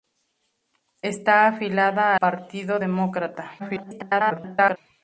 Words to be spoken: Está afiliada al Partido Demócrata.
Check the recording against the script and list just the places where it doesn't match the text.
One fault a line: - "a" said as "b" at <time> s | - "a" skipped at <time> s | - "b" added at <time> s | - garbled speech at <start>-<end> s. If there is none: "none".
- "al" skipped at 2.1 s
- garbled speech at 3.6-4.8 s